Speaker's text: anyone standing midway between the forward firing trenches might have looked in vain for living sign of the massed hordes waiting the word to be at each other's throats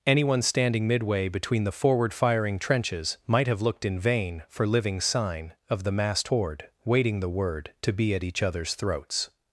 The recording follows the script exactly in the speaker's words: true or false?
false